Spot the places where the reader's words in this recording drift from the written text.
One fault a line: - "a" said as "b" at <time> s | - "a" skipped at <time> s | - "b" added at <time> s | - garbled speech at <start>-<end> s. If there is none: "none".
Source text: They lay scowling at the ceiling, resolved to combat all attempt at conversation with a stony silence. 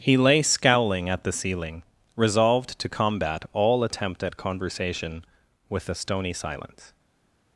- "They" said as "He" at 0.0 s